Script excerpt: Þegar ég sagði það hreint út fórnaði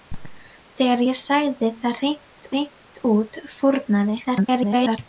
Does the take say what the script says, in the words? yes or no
no